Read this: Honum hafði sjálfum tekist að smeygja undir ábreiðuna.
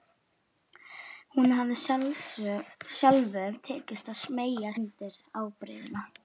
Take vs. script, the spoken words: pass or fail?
pass